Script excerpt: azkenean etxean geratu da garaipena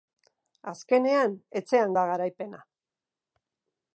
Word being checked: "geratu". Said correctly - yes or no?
no